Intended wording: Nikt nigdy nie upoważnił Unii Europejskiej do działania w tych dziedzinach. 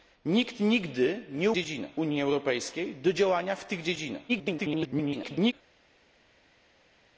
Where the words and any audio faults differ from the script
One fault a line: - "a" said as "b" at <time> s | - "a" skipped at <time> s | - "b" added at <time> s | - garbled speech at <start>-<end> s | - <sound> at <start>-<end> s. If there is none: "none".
- "upoważnił" said as "dziedzinach" at 1.5 s
- garbled speech at 4.3-5.5 s